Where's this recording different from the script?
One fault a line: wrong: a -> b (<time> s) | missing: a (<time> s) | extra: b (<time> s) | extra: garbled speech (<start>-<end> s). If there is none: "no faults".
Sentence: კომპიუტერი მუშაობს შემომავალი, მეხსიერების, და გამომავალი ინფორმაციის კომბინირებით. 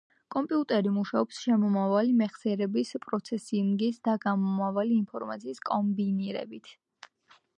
extra: პროცესინგის (3.0 s)